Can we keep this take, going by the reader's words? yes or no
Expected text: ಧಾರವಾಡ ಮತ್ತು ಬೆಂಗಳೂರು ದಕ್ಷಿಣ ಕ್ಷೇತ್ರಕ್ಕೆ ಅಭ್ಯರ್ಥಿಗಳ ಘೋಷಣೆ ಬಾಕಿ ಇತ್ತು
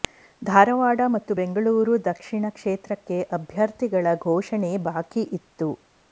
yes